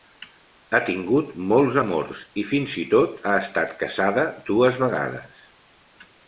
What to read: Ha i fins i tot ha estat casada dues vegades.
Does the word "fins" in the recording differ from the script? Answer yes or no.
no